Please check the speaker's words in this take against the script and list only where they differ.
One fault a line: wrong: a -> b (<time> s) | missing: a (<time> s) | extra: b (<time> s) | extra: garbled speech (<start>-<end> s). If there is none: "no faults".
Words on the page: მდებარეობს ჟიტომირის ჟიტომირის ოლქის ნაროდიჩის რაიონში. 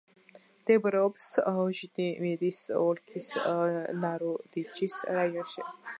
missing: ჟიტომირის (2.6 s)